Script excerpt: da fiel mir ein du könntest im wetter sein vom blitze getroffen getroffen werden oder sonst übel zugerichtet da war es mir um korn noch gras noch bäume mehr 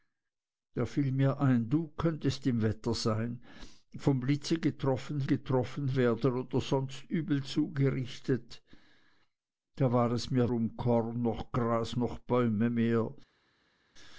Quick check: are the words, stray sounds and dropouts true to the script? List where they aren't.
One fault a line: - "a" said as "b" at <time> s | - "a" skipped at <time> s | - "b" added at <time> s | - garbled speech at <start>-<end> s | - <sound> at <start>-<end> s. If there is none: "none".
none